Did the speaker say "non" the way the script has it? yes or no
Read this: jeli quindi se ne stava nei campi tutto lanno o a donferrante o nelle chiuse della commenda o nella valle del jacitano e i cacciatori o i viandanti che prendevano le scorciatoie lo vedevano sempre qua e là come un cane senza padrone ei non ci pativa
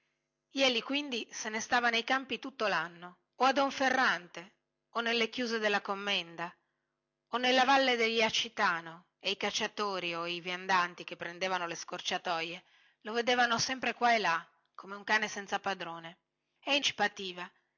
no